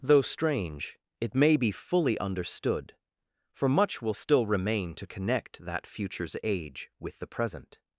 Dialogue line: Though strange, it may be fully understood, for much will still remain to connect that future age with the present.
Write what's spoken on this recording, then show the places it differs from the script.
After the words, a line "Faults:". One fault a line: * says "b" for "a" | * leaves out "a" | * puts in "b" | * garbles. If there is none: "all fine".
Though strange, it may be fully understood, for much will still remain to connect that futures age with the present.
Faults:
* says "futures" for "future"